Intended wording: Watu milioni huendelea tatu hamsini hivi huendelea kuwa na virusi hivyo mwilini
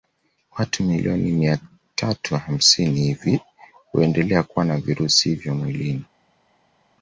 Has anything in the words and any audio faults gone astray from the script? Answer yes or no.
yes